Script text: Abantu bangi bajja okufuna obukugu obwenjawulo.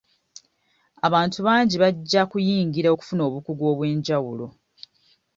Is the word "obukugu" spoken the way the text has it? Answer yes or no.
yes